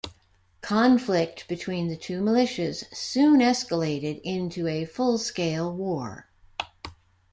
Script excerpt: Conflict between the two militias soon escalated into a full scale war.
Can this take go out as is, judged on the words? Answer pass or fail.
pass